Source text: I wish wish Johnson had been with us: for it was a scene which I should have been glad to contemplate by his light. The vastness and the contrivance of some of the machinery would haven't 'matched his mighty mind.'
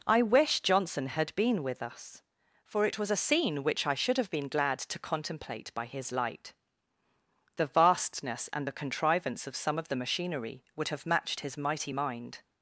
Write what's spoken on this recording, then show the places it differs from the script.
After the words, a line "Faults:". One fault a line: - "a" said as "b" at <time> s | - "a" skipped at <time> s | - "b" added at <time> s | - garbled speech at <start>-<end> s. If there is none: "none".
I wish Johnson had been with us: for it was a scene which I should have been glad to contemplate by his light. The vastness and the contrivance of some of the machinery would have 'matched his mighty mind.'
Faults:
- "wish" skipped at 0.6 s
- "haven't" said as "have" at 10.9 s